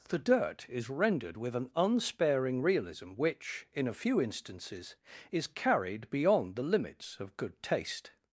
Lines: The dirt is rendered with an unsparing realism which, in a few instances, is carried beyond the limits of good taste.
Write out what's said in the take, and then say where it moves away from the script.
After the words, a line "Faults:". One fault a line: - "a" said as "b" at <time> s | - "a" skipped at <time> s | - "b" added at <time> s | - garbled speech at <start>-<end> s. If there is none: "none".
The dirt is rendered with an unsparing realism which, in a few instances, is carried beyond the limits of good taste.
Faults:
none